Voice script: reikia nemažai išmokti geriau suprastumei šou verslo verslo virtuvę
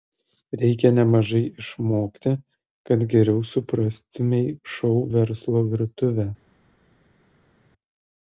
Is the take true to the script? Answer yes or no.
no